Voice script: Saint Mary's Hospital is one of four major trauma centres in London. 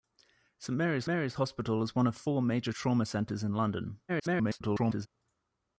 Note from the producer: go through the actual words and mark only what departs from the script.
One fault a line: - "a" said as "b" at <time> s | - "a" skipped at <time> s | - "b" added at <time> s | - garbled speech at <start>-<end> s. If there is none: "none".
- "Mary's" added at 1.0 s
- garbled speech at 4.1-5.1 s